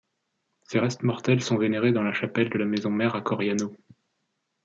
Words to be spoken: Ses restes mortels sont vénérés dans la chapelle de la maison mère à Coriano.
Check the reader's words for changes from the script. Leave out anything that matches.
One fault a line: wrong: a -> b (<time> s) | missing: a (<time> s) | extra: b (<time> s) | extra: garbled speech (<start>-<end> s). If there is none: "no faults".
no faults